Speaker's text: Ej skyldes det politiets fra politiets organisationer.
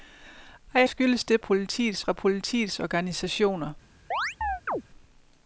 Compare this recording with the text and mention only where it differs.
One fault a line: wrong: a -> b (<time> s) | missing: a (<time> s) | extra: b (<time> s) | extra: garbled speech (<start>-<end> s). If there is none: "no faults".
no faults